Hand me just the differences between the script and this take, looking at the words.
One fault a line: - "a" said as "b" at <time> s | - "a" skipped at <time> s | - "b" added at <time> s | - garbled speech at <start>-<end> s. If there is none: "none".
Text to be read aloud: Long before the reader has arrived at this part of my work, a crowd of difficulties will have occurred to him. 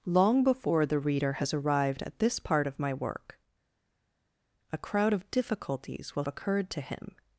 - "have" skipped at 6.2 s